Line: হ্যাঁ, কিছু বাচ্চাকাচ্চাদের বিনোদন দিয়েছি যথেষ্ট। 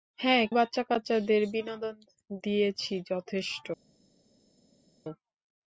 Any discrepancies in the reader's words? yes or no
yes